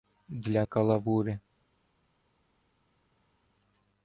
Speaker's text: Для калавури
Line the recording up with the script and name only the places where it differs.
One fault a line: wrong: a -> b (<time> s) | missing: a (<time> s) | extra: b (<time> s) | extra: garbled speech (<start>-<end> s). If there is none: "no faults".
no faults